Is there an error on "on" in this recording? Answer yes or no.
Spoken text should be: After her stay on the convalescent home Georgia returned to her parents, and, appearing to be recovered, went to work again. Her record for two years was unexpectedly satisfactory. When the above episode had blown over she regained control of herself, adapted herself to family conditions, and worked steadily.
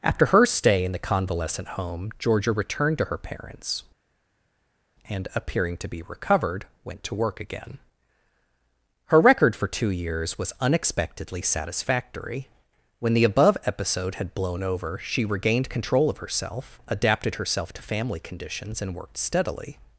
yes